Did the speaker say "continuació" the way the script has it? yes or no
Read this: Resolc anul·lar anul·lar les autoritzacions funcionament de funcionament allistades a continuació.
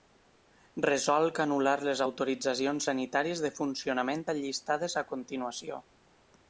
yes